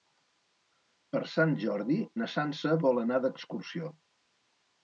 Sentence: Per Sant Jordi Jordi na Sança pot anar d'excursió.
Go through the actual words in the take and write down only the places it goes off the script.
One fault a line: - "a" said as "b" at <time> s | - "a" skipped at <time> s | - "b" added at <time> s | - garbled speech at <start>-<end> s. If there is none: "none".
- "Jordi" skipped at 2.0 s
- "pot" said as "vol" at 2.9 s